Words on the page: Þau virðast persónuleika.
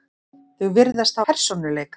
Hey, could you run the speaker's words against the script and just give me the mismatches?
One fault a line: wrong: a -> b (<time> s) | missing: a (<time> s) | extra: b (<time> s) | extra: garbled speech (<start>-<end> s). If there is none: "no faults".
no faults